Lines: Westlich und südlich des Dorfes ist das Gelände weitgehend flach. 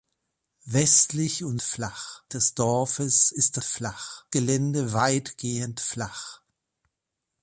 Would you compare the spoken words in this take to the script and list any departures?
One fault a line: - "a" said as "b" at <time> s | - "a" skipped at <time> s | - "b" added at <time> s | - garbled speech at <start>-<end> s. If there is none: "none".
- "südlich" said as "flach" at 1.6 s
- "das" said as "flach" at 3.6 s